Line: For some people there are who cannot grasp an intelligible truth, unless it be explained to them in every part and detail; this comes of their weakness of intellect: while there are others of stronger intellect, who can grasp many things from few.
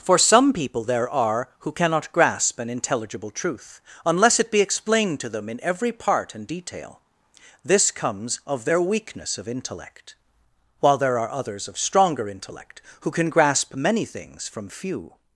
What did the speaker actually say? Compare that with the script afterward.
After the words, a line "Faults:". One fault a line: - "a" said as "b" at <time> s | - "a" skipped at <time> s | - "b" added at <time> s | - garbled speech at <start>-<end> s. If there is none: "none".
For some people there are who cannot grasp an intelligible truth, unless it be explained to them in every part and detail; this comes of their weakness of intellect: while there are others of stronger intellect, who can grasp many things from few.
Faults:
none